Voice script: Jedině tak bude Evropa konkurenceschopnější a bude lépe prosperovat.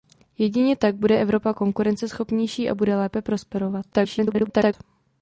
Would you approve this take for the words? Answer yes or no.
no